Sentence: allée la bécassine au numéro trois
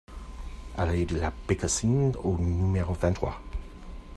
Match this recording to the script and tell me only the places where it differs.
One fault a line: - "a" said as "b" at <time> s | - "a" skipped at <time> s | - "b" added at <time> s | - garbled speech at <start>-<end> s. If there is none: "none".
- "de" added at 1.0 s
- "vingt" added at 2.9 s